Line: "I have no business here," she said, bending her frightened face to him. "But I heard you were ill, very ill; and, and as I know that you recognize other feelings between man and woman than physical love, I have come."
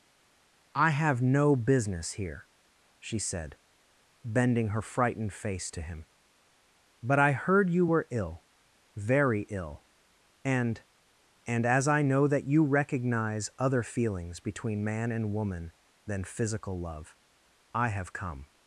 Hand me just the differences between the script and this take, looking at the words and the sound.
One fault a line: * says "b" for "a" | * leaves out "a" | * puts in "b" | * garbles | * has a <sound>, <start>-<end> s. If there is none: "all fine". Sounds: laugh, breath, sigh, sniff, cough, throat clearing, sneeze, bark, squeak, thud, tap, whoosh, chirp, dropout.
all fine